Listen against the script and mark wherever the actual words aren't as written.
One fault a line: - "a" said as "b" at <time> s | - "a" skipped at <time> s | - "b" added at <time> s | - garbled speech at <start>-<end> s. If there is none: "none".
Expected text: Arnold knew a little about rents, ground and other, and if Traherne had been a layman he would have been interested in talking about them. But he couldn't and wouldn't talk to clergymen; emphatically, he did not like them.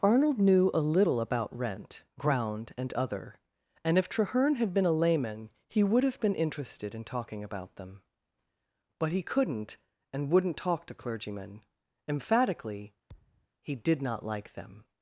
- "rents" said as "rent" at 1.6 s